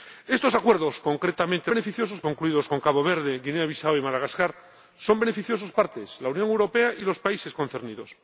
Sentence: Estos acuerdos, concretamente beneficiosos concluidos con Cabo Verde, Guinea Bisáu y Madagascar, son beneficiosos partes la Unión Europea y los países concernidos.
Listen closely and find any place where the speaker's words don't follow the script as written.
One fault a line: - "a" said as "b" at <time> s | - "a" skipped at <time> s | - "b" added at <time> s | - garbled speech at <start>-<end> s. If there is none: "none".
none